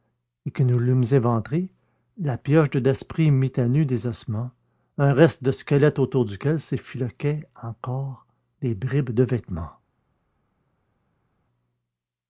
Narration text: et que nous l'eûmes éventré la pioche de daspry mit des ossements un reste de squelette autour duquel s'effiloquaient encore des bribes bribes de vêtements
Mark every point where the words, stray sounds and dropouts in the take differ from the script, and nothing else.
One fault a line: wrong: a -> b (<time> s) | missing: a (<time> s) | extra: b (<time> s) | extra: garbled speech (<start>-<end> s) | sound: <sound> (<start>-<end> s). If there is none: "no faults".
extra: à nu (3.6 s)
missing: bribes (9.1 s)